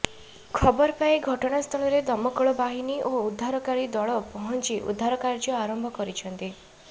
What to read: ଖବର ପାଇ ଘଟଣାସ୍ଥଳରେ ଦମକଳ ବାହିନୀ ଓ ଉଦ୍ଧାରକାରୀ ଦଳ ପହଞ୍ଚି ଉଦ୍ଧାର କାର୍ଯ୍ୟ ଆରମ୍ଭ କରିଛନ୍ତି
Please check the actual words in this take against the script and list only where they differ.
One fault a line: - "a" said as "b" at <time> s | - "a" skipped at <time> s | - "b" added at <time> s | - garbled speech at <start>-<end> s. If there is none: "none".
none